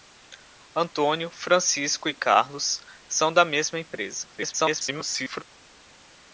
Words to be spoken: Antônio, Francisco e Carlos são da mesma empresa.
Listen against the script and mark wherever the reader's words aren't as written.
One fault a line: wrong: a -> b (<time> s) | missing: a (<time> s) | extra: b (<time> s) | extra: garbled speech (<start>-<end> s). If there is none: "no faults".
extra: garbled speech (4.4-5.4 s)